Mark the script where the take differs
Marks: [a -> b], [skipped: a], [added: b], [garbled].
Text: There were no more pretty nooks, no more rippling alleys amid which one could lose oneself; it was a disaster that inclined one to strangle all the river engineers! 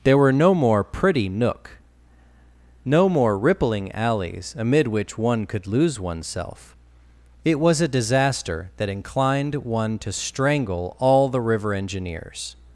There were no more pretty [nooks, -> nook] no more rippling alleys amid which one could lose oneself; it was a disaster that inclined one to strangle all the river engineers!